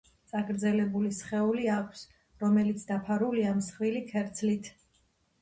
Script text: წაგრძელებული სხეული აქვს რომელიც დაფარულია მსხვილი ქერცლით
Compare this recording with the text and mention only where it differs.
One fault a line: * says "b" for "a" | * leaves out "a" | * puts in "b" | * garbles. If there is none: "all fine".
all fine